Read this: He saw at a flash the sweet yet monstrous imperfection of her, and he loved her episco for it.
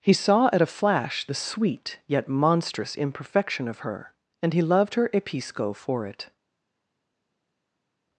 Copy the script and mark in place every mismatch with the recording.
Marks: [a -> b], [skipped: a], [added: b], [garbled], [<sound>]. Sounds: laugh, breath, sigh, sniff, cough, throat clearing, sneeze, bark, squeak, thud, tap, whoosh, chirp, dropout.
He saw at a flash the sweet yet monstrous imperfection of her, and he loved her episco for it.